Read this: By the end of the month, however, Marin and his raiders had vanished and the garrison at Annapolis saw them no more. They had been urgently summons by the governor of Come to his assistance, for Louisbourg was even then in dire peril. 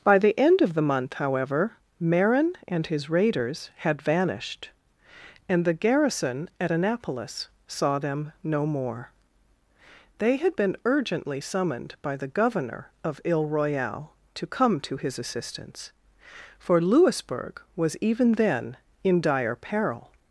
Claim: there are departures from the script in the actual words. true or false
true